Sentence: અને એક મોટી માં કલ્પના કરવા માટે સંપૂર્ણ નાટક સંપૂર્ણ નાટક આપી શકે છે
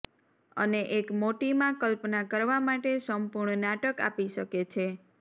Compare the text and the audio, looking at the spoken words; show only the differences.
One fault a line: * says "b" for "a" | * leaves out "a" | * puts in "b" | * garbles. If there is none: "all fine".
* leaves out "સંપૂર્ણ નાટક"